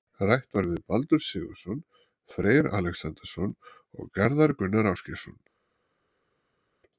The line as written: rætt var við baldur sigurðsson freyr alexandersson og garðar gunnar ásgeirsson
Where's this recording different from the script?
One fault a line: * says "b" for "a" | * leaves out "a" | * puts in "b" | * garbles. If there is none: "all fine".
all fine